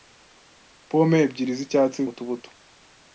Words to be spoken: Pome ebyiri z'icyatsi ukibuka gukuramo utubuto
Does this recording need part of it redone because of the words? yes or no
yes